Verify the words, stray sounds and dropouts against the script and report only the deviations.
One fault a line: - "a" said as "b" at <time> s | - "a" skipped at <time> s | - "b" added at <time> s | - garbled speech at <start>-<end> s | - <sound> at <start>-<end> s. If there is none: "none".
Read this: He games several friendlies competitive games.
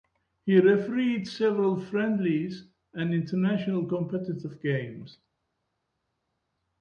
- "games" said as "refereed" at 0.6 s
- "and international" added at 2.9 s